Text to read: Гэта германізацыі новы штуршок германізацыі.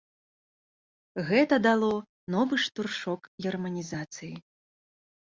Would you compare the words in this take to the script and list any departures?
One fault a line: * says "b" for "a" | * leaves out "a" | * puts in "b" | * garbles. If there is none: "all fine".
* says "дало" for "германізацыі"